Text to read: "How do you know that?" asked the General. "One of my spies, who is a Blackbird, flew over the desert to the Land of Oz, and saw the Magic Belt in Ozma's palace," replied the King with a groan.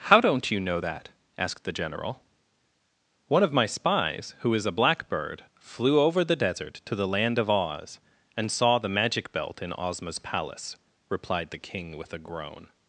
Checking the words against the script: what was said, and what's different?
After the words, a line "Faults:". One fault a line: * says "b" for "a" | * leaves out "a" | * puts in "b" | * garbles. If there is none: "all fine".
"How don't you know that?" asked the General. "One of my spies, who is a Blackbird, flew over the desert to the Land of Oz, and saw the Magic Belt in Ozma's palace," replied the King with a groan.
Faults:
* says "don't" for "do"